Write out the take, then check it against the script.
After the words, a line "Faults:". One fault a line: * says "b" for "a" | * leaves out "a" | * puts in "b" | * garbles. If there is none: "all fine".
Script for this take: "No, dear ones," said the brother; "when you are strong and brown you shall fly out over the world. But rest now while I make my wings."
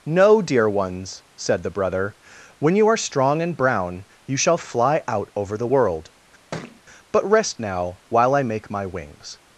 "No, dear ones," said the brother; "when you are strong and brown you shall fly out over the world. But rest now while I make my wings."
Faults:
all fine